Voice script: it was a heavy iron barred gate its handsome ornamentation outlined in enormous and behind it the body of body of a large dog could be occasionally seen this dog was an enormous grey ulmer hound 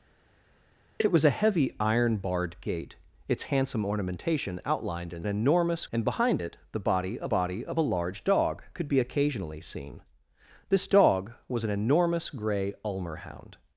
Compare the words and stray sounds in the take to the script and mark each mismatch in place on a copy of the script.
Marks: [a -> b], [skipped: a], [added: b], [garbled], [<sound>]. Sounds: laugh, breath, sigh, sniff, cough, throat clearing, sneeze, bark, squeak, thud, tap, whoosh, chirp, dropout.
it was a heavy iron barred gate its handsome ornamentation outlined in enormous and behind it the body of body of a large dog could be occasionally seen this dog was an enormous grey ulmer hound